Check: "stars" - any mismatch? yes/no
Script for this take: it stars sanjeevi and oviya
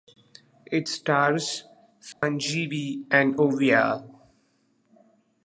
no